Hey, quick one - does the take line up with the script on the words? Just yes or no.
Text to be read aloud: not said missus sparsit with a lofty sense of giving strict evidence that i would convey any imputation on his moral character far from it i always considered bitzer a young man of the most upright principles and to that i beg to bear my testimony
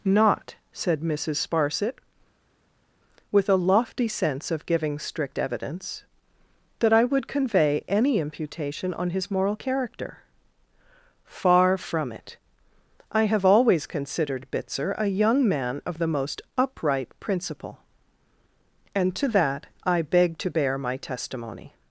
no